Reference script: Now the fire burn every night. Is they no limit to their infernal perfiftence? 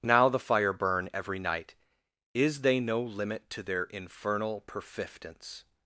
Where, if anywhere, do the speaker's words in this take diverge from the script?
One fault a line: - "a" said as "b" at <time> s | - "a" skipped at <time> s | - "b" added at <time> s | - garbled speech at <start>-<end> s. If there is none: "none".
none